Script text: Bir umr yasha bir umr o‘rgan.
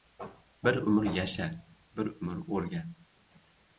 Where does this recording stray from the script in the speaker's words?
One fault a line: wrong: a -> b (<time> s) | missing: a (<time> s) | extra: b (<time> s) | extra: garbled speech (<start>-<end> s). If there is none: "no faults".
no faults